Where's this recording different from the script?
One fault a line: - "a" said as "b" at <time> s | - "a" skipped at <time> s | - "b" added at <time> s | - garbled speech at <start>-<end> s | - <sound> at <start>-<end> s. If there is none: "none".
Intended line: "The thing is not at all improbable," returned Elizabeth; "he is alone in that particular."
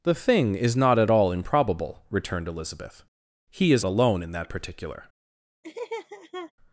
- laugh at 5.6-6.5 s